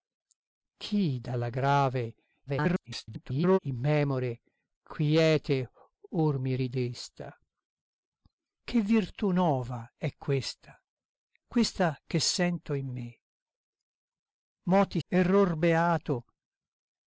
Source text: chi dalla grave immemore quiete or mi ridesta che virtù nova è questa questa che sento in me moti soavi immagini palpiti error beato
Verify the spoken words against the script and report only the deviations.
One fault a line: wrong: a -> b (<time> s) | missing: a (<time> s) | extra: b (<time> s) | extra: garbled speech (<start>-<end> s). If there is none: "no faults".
extra: garbled speech (2.5-3.6 s)
missing: soavi immagini palpiti (15.0 s)